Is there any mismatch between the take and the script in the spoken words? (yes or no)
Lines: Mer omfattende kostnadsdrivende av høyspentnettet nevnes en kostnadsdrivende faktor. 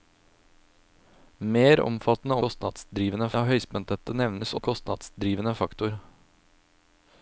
no